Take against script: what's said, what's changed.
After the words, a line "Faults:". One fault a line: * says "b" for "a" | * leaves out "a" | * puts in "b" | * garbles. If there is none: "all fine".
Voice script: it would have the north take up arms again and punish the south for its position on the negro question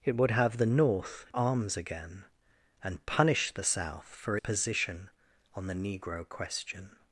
it would have the north arms again and punish the south for position on the negro question
Faults:
* leaves out "take up"
* leaves out "its"